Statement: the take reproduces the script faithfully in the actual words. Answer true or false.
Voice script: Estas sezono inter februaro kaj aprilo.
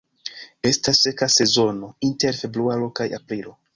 false